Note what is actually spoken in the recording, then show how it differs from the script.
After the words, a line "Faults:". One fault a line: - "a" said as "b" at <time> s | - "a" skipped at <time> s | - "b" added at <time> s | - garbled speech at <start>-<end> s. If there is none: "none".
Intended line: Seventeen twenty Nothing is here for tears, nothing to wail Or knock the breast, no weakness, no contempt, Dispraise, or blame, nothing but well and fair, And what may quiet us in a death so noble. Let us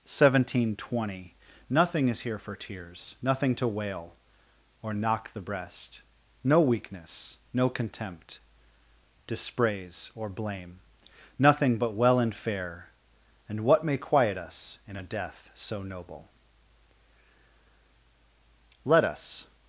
Seventeen twenty Nothing is here for tears, nothing to wail Or knock the breast, no weakness, no contempt, Dispraise, or blame, nothing but well and fair, And what may quiet us in a death so noble. Let us
Faults:
none